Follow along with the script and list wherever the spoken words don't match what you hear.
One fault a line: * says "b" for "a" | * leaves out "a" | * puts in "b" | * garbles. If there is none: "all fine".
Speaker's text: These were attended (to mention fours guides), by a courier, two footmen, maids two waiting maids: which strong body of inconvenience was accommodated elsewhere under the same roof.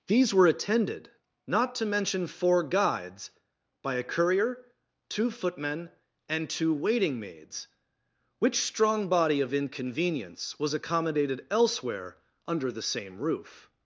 * puts in "not"
* says "four" for "fours"
* says "and" for "maids"